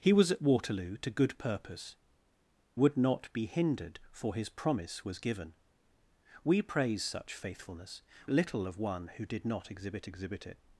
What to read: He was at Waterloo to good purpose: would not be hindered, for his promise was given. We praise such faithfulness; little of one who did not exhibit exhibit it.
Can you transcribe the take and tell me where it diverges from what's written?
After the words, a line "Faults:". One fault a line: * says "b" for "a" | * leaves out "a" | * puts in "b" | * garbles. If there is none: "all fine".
He was at Waterloo to good purpose: would not be hindered, for his promise was given. We praise such faithfulness; little of one who did not exhibit exhibit it.
Faults:
all fine